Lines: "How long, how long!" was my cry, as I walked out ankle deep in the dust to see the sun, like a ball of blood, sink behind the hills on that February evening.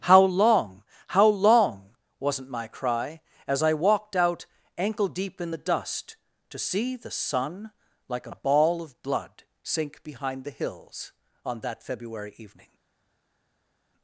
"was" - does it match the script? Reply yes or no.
no